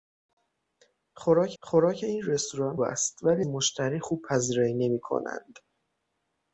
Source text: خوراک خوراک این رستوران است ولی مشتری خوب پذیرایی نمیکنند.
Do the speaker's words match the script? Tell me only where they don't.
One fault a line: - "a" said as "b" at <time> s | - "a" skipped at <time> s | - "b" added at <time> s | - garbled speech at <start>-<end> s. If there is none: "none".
none